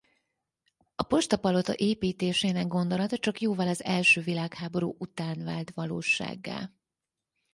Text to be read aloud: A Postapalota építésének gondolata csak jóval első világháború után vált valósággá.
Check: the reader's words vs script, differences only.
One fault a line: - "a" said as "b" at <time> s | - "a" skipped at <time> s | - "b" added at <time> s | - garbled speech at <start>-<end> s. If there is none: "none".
- "az" added at 3.7 s